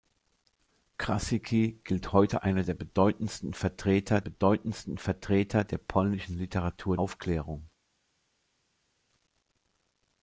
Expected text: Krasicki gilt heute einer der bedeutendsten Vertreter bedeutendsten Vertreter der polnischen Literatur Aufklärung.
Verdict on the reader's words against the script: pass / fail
pass